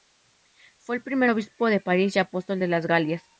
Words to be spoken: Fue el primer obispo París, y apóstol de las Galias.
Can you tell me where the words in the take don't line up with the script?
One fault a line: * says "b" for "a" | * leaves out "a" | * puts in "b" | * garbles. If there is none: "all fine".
* puts in "de"